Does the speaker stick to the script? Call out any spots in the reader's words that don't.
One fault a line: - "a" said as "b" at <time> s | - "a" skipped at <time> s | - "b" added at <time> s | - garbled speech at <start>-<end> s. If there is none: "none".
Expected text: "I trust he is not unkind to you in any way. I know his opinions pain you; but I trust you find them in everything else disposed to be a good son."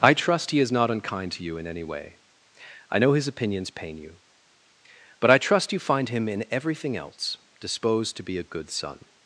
- "them" said as "him" at 6.1 s